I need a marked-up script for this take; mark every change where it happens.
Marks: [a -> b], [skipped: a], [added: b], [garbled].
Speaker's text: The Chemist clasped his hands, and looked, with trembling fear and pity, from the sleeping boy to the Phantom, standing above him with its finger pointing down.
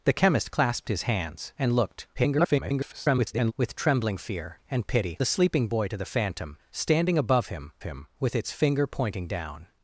The Chemist clasped his hands, and looked, [garbled] with trembling fear and pity, [skipped: from] the sleeping boy to the Phantom, standing above him [added: him] with its finger pointing down.